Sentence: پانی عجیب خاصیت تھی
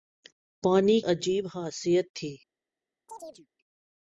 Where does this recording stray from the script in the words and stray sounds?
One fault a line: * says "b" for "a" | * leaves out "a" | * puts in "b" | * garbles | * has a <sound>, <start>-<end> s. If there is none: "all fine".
* has a chirp, 3.1-3.5 s